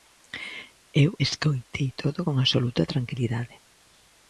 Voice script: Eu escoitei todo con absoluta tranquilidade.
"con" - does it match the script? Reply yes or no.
yes